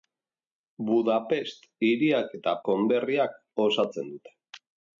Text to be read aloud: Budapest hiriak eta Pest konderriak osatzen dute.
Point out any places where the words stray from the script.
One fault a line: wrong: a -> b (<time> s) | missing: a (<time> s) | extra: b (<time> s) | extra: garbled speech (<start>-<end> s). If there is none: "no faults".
missing: Pest (2.5 s)